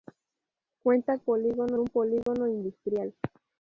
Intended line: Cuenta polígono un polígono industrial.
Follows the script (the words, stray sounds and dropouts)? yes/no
no